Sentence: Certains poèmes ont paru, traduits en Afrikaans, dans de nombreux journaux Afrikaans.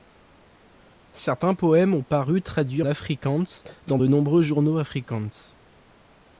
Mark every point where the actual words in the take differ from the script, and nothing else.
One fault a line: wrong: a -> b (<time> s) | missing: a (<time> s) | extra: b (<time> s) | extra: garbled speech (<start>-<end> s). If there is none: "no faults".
missing: en (2.8 s)